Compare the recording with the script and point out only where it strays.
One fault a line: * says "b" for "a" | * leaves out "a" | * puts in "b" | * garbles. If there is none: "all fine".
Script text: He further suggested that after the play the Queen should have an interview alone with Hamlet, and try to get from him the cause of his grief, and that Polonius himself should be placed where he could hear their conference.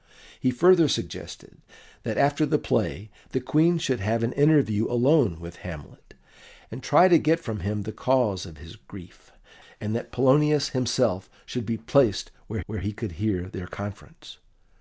* puts in "where"